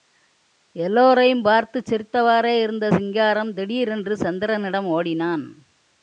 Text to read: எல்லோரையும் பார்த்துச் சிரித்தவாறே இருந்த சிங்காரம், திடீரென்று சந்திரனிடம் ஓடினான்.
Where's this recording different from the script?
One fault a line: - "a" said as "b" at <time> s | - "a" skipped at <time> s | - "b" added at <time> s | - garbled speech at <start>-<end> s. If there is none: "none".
none